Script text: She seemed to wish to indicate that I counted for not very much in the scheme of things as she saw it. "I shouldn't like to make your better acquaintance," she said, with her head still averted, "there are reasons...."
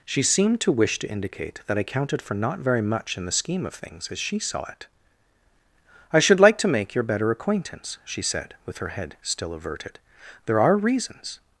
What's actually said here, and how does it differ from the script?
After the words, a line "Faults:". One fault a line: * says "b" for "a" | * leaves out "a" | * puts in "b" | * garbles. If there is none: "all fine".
She seemed to wish to indicate that I counted for not very much in the scheme of things as she saw it. "I should like to make your better acquaintance," she said, with her head still averted, "there are reasons...."
Faults:
* says "should" for "shouldn't"